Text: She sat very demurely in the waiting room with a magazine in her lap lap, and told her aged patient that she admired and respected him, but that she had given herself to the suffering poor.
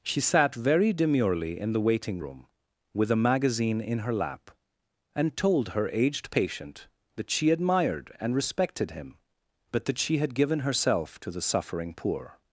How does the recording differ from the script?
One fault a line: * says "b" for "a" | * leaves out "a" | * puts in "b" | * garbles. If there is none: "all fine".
* leaves out "lap"